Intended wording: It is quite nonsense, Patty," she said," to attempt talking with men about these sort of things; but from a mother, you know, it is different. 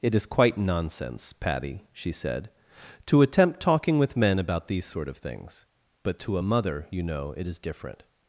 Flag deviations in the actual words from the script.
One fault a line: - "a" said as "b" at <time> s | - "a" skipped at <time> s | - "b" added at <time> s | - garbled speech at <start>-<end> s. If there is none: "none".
- "from" said as "to" at 6.2 s